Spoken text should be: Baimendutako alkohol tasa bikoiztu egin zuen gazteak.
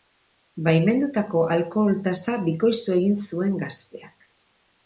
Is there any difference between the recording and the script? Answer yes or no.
no